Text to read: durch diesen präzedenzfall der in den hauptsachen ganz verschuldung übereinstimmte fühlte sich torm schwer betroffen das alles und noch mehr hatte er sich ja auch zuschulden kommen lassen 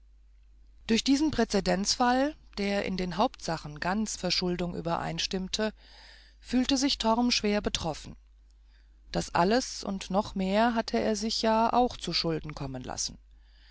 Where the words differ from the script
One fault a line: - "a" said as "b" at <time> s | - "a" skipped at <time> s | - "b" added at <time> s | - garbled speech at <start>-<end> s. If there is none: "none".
none